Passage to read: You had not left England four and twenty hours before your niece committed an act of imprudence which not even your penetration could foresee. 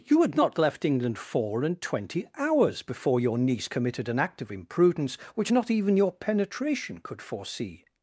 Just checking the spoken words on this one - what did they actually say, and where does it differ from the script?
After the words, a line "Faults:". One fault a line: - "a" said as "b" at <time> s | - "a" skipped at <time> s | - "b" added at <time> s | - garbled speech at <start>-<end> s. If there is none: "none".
You had not left England four and twenty hours before your niece committed an act of imprudence which not even your penetration could foresee.
Faults:
none